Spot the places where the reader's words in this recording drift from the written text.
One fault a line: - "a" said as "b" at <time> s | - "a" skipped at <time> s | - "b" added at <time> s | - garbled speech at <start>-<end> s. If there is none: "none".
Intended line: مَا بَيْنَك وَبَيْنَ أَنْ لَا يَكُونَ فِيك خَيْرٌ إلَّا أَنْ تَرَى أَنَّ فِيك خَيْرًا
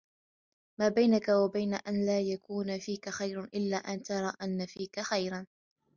none